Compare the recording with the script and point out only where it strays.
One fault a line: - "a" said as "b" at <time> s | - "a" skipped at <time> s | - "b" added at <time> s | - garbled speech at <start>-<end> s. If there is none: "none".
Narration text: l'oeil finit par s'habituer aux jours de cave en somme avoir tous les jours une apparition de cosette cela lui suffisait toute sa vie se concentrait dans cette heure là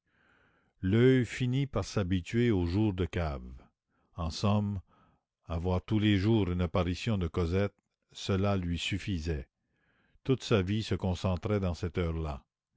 none